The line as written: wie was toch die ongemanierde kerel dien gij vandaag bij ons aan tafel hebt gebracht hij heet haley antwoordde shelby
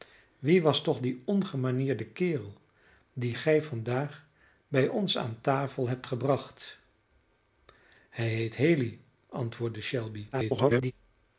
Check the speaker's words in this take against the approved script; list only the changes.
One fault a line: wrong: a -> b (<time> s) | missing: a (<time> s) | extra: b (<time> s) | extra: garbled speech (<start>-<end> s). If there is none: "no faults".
extra: garbled speech (10.3-10.9 s)